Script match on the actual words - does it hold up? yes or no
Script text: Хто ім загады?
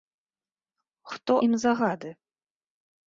yes